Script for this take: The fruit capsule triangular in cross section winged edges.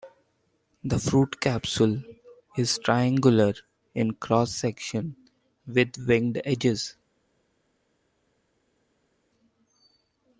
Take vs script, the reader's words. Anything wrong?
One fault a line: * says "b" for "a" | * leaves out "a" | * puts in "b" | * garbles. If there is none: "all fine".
* puts in "is"
* puts in "with"